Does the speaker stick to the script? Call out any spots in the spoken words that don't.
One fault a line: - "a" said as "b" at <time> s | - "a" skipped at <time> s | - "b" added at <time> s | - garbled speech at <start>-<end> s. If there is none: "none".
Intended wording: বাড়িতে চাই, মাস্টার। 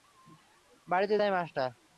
none